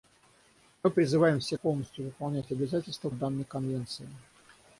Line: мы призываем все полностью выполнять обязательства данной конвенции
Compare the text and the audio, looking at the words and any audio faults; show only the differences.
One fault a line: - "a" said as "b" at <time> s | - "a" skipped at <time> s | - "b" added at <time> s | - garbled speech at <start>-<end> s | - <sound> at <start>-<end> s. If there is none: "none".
none